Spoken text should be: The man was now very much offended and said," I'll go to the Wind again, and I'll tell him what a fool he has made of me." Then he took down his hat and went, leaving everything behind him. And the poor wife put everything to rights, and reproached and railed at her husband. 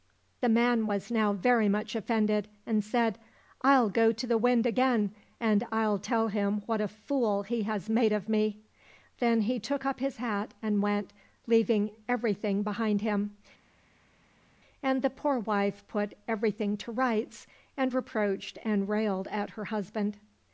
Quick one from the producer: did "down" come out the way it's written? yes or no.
no